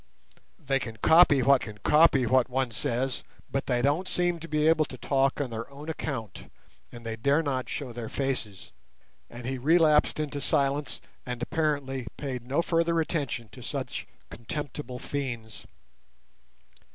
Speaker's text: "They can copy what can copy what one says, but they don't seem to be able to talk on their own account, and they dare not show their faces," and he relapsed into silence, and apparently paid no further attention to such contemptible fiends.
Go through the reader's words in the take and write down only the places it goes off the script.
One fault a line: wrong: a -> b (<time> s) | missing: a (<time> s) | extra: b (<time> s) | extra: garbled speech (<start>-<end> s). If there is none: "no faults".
no faults